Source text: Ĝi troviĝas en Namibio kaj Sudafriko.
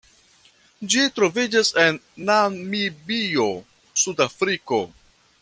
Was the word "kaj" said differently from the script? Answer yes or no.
yes